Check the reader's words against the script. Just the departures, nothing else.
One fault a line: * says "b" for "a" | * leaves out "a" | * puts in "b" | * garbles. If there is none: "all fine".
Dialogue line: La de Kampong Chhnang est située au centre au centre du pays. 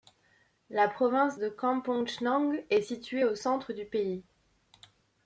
* puts in "province"
* leaves out "au centre"